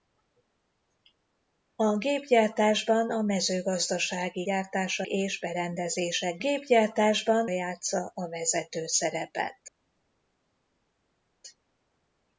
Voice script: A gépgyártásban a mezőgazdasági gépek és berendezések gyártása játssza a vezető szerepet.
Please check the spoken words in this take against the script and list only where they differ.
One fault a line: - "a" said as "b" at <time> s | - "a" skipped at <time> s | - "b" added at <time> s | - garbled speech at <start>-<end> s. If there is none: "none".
- "gépek" said as "gyártása" at 4.4 s
- "gyártása" said as "gépgyártásban" at 6.4 s